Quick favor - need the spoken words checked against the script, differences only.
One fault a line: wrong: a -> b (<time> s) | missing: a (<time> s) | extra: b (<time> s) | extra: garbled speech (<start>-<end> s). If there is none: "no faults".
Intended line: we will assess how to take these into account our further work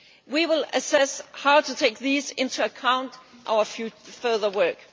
no faults